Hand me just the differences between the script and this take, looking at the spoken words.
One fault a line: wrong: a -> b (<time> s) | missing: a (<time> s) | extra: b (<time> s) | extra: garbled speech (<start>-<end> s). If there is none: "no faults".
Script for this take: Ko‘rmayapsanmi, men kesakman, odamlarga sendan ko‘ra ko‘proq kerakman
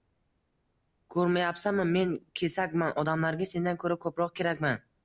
no faults